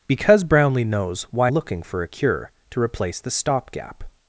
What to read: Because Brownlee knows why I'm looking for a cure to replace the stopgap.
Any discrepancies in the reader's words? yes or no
yes